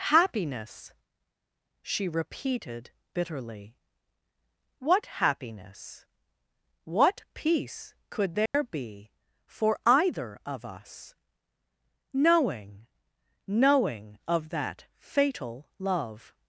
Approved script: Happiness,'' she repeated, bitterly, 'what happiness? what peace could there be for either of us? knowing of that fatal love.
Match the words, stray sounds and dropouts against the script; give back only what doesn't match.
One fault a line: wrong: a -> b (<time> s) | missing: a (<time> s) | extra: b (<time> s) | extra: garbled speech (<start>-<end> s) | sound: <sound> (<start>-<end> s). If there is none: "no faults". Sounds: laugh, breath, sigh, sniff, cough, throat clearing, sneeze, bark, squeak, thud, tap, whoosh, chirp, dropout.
sound: dropout (8.5-8.5 s)
extra: knowing (13.5 s)